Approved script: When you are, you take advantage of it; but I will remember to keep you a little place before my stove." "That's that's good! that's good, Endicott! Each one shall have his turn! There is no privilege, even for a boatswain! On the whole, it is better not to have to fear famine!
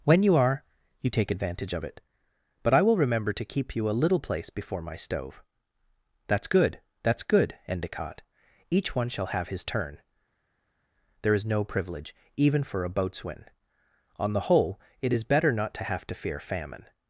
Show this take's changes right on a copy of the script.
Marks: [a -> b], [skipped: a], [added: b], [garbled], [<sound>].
When you are, you take advantage of it; but I will remember to keep you a little place before my stove." "That's [skipped: that's] good! that's good, Endicott! Each one shall have his turn! There is no privilege, even for a boatswain! On the whole, it is better not to have to fear famine!